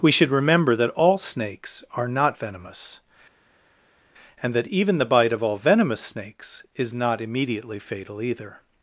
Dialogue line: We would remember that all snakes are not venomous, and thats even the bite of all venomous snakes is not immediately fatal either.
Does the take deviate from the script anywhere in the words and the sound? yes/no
yes